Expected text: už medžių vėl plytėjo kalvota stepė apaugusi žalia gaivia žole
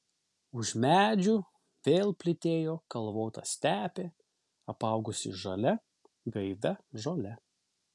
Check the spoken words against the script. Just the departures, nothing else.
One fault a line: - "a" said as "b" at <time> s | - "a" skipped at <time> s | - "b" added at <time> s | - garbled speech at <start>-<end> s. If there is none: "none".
none